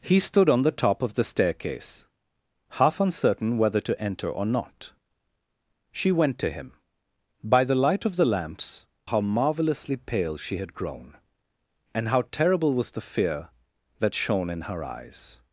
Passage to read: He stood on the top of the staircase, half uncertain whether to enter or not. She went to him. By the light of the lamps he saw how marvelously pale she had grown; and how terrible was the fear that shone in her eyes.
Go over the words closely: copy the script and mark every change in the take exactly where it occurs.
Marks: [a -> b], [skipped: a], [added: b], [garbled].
He stood on the top of the staircase, half uncertain whether to enter or not. She went to him. By the light of the lamps [skipped: he saw] how marvelously pale she had grown; and how terrible was the fear that shone in her eyes.